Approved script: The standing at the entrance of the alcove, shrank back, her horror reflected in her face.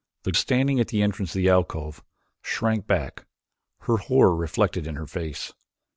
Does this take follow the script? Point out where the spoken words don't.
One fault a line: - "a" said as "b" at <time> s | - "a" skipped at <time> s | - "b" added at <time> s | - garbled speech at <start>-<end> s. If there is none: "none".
none